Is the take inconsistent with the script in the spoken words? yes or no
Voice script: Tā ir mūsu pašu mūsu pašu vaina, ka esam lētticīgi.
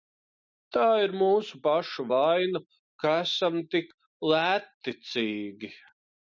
yes